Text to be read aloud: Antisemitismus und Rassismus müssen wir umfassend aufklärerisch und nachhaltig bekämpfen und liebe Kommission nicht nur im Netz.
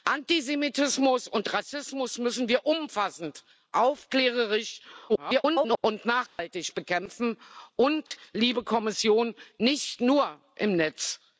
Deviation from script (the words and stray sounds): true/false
true